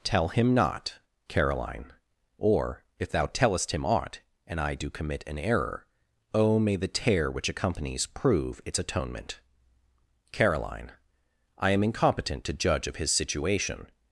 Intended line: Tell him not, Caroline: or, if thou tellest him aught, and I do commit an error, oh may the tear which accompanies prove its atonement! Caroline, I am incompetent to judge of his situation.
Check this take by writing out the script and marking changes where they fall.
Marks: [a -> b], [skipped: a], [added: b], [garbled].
Tell him not, Caroline: or, if thou tellest him aught, and I do commit an error, oh may the tear which accompanies prove its atonement! Caroline, I am incompetent to judge of his situation.